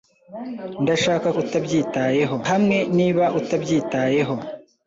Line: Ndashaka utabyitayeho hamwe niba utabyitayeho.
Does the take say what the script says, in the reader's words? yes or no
yes